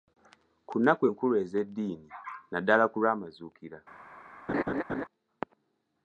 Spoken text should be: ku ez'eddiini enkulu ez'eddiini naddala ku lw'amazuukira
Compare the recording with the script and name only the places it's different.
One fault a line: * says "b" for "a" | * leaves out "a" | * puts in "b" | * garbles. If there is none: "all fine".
* says "nnaku" for "ez'eddiini"